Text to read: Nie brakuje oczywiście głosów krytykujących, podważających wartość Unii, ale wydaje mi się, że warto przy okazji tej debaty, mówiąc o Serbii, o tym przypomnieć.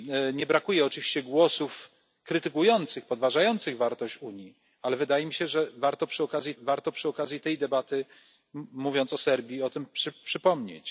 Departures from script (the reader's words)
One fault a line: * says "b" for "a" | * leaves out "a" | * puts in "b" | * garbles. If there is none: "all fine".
* puts in "warto przy okazji"